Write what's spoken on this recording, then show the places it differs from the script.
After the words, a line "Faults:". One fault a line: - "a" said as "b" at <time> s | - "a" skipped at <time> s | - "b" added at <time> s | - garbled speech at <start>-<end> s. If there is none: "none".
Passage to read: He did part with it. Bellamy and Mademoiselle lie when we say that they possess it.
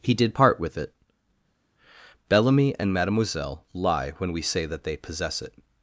He did part with it. Bellamy and Mademoiselle lie when we say that they possess it.
Faults:
none